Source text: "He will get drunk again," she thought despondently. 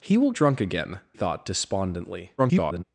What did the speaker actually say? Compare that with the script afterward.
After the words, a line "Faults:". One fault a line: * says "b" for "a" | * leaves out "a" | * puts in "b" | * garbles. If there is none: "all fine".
"He will drunk again," thought despondently. [garbled]
Faults:
* leaves out "get"
* leaves out "she"
* garbles